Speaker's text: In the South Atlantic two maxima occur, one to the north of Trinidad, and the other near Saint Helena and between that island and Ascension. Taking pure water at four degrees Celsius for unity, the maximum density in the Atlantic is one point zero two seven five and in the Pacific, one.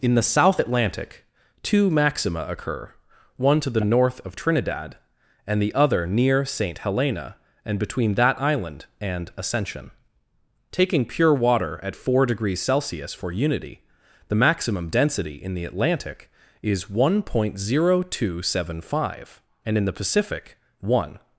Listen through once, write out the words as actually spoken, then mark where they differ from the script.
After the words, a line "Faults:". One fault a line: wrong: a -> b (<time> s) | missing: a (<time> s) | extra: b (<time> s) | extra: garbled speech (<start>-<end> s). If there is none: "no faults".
In the South Atlantic two maxima occur, one to the north of Trinidad, and the other near Saint Helena and between that island and Ascension. Taking pure water at four degrees Celsius for unity, the maximum density in the Atlantic is one point zero two seven five and in the Pacific, one.
Faults:
no faults